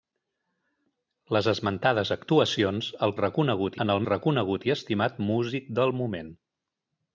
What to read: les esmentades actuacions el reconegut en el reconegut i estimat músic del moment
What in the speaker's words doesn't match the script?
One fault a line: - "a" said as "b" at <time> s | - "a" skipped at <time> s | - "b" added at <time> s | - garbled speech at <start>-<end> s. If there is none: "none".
none